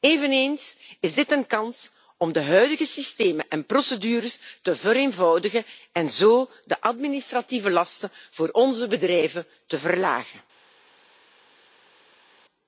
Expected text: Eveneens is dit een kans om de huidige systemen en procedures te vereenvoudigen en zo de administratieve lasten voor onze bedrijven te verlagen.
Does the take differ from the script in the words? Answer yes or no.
no